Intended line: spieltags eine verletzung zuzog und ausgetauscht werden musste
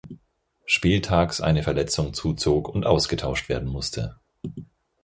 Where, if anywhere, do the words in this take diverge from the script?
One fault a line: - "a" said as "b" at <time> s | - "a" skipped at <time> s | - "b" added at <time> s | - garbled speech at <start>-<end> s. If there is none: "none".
none